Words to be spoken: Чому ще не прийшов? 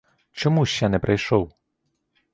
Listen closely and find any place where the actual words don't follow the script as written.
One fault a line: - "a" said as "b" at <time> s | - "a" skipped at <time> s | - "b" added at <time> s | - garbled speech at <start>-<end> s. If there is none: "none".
none